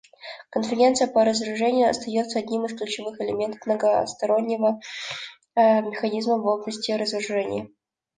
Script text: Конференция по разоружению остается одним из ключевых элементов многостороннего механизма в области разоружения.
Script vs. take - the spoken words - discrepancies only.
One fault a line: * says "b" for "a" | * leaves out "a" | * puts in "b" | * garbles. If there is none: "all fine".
all fine